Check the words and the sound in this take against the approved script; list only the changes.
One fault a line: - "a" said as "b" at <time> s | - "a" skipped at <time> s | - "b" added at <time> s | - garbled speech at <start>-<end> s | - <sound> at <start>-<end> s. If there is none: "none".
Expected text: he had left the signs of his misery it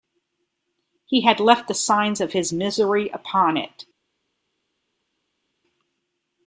- "upon" added at 3.1 s